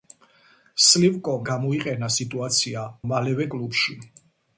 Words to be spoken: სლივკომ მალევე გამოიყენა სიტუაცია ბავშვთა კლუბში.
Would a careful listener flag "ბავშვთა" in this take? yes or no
yes